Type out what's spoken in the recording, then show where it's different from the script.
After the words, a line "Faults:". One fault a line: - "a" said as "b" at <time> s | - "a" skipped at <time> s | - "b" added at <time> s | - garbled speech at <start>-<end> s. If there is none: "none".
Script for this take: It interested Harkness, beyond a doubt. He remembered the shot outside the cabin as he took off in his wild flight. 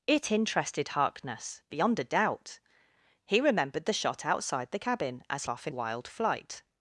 It interested Harkness, beyond a doubt. He remembered the shot outside the cabin as off in wild flight.
Faults:
- "he took" skipped at 5.4 s
- "his" skipped at 5.7 s